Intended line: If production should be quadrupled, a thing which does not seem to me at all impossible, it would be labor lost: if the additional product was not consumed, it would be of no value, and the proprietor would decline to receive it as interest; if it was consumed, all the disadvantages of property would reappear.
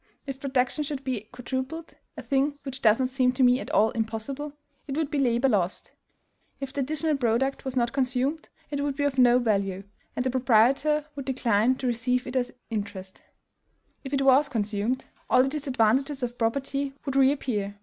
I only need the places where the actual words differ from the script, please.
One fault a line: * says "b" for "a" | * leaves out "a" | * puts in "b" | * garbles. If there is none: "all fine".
all fine